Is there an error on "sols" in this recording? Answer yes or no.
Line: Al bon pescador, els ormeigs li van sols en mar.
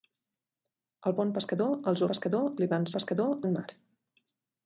yes